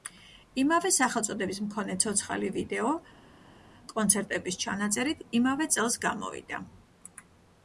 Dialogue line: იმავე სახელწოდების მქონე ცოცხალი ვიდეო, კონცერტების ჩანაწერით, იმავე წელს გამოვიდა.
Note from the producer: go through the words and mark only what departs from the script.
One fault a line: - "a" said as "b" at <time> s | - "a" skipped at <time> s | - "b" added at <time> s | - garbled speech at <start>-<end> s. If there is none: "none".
none